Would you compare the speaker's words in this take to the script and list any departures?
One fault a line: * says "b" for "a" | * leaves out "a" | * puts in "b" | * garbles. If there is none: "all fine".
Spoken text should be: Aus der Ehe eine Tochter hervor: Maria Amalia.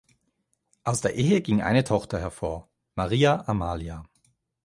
* puts in "ging"